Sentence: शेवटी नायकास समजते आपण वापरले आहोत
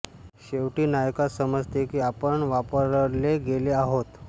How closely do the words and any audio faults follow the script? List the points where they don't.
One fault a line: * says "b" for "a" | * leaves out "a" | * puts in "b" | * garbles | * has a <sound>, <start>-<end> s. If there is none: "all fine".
* puts in "की"
* puts in "गेले"